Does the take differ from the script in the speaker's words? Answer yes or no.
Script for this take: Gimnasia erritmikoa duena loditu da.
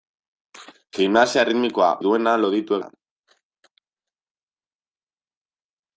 no